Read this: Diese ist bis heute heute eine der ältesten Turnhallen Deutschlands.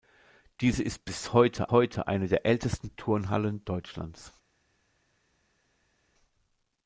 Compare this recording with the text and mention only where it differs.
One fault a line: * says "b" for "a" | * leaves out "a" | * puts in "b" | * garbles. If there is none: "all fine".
all fine